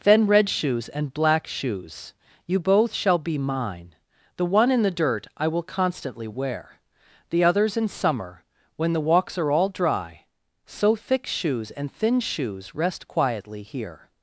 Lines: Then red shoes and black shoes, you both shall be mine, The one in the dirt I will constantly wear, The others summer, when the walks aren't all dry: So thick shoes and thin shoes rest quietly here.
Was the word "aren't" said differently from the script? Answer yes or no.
yes